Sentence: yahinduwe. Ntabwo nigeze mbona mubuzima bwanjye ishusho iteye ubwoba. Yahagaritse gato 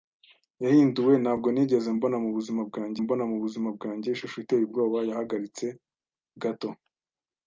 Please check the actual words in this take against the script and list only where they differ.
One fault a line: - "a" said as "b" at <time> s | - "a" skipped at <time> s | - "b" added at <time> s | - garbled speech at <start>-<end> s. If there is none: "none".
- "mbona mubuzima bwanjye" added at 3.0 s